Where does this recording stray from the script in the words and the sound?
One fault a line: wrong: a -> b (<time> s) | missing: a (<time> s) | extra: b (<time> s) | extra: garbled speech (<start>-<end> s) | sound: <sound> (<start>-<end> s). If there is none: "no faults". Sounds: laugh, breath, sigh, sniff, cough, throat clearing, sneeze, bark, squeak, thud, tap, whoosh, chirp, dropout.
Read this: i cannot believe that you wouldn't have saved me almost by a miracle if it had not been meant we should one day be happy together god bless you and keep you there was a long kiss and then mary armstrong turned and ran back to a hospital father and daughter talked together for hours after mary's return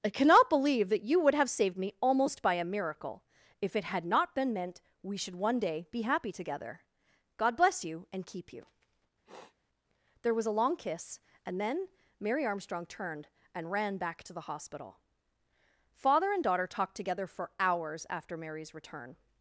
wrong: wouldn't -> would (1.2 s)
sound: sniff (9.2-9.6 s)
wrong: a -> the (14.3 s)